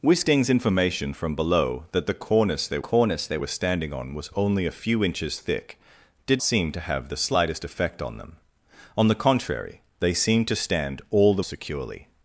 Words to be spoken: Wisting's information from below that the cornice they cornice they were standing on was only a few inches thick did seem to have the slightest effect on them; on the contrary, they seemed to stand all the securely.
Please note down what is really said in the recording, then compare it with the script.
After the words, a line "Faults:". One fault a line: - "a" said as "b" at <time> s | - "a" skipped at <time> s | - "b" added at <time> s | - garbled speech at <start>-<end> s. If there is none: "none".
Wisting's information from below that the cornice they cornice they were standing on was only a few inches thick did seem to have the slightest effect on them; on the contrary, they seemed to stand all the securely.
Faults:
none